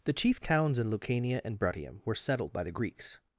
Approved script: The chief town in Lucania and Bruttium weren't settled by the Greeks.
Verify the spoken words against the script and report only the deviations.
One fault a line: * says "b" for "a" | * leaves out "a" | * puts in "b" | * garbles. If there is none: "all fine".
* says "towns" for "town"
* says "were" for "weren't"